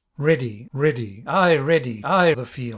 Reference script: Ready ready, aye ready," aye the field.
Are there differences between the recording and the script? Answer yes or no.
no